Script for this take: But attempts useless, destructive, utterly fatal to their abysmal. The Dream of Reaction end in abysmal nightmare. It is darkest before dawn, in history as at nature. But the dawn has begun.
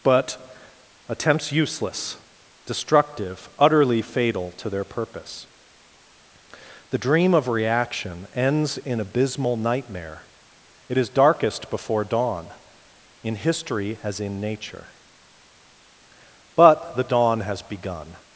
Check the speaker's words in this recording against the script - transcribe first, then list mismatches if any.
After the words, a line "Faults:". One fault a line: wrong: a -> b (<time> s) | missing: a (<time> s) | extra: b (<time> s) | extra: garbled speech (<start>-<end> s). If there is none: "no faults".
But attempts useless, destructive, utterly fatal to their purpose. The Dream of Reaction ends in abysmal nightmare. It is darkest before dawn, in history as in nature. But the dawn has begun.
Faults:
wrong: abysmal -> purpose (4.8 s)
wrong: end -> ends (8.3 s)
wrong: at -> in (14.2 s)